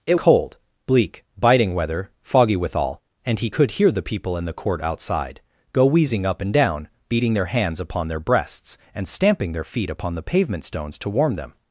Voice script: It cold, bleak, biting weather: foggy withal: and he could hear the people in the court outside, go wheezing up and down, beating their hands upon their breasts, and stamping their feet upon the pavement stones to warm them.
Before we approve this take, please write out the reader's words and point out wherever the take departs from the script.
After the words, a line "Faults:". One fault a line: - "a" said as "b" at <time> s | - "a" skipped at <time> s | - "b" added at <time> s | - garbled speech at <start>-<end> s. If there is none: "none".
It cold, bleak, biting weather: foggy withal: and he could hear the people in the court outside, go wheezing up and down, beating their hands upon their breasts, and stamping their feet upon the pavement stones to warm them.
Faults:
none